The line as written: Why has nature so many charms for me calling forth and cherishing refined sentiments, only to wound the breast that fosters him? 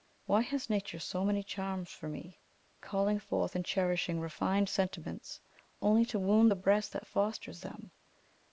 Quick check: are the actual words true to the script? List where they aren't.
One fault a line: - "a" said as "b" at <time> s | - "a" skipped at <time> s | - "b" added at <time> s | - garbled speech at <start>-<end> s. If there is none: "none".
- "him" said as "them" at 7.6 s